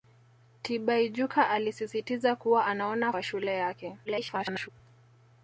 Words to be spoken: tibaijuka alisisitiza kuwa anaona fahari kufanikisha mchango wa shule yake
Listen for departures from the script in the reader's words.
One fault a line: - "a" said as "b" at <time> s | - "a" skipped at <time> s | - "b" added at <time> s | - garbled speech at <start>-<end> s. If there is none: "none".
- "fahari kufanikisha mchango" skipped at 3.1 s
- garbled speech at 4.0-4.7 s